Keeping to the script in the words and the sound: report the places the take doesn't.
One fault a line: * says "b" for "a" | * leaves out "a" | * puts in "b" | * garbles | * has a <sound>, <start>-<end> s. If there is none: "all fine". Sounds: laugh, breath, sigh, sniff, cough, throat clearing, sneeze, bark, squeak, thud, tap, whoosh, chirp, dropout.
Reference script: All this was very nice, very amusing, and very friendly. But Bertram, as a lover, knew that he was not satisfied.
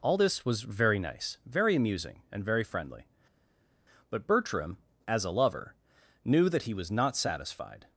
all fine